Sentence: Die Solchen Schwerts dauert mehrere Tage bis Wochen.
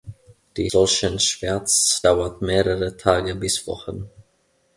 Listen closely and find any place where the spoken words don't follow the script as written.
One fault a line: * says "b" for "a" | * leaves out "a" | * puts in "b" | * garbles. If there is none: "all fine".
all fine